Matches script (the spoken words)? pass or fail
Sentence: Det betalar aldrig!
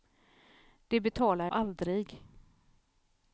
pass